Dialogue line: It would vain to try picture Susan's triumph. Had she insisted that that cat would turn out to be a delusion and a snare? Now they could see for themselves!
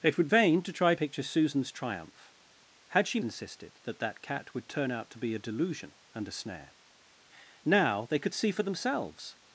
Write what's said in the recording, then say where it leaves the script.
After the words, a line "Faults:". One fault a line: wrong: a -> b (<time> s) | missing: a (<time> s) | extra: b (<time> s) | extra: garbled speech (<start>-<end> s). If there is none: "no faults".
It would vain to try picture Susan's triumph. Had she insisted that that cat would turn out to be a delusion and a snare? Now they could see for themselves!
Faults:
no faults